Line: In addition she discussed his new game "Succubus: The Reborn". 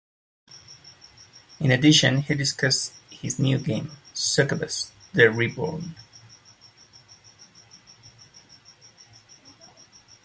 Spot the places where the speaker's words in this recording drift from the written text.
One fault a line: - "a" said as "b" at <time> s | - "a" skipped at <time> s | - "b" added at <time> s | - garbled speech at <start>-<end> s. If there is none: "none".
- "she" said as "he" at 2.2 s